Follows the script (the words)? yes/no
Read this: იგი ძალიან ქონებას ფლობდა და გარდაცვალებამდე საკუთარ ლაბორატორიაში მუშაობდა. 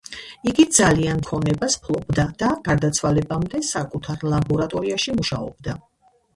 yes